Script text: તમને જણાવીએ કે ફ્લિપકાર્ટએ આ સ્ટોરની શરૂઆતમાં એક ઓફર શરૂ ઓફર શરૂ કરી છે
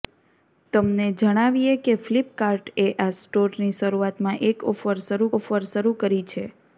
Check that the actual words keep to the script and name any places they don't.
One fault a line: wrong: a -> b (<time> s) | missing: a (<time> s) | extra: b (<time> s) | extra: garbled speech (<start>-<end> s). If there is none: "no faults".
no faults